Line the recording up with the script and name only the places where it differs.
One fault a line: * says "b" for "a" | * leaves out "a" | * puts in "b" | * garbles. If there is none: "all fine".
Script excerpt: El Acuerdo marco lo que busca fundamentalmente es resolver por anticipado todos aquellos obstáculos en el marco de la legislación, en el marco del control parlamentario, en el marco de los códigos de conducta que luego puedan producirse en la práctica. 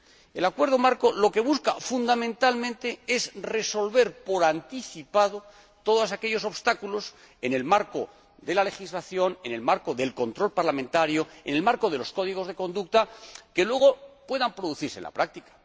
all fine